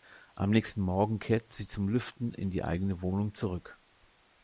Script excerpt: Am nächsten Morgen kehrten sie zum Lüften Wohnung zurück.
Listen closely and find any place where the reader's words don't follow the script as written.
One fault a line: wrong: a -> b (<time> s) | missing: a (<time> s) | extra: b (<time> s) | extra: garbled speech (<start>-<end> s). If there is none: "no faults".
extra: in die eigene (2.3 s)